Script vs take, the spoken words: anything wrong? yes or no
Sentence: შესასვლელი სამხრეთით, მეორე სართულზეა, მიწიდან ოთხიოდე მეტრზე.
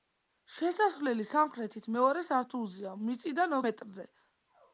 yes